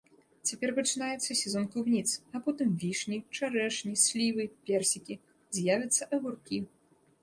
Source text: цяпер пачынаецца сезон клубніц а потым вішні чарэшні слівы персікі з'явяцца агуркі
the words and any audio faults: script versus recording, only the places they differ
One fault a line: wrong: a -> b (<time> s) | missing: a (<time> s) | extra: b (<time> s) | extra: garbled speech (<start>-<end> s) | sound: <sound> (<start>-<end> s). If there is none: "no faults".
no faults